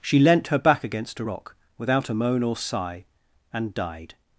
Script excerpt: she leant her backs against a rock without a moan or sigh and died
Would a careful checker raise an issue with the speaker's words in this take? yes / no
yes